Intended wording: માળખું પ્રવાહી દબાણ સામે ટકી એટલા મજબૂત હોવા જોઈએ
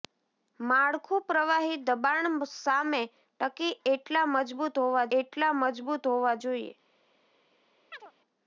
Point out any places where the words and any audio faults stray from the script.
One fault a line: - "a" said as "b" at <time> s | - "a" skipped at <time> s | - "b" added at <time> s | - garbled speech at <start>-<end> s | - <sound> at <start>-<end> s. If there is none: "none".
- "એટલા મજબૂત હોવા" added at 5.2 s
- chirp at 7.9-8.1 s